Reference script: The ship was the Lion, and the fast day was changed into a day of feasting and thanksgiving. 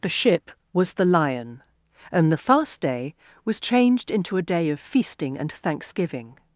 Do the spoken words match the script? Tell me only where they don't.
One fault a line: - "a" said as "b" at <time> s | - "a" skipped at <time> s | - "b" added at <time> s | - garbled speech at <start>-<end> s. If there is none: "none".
none